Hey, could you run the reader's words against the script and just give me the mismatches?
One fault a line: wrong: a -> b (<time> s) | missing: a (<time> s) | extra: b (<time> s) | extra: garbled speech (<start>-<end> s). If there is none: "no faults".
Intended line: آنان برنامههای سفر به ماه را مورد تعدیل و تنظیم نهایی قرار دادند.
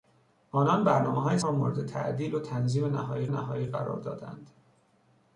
missing: سفر به ماه (1.4 s)
extra: نهایی (3.2 s)